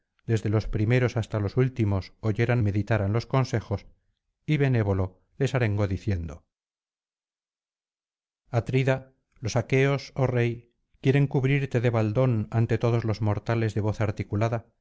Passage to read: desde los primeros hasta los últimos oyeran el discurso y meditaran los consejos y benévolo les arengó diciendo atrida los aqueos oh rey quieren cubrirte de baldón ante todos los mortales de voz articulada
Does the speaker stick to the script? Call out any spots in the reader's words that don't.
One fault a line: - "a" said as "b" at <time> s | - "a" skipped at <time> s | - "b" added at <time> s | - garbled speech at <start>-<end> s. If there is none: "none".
- "el discurso y" skipped at 2.6 s